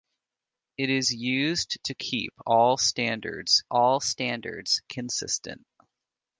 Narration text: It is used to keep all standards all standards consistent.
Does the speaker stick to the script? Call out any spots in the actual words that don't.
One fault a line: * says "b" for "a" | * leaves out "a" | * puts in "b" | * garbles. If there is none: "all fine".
all fine